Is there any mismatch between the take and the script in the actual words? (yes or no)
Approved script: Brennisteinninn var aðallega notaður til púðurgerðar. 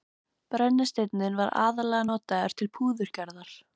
no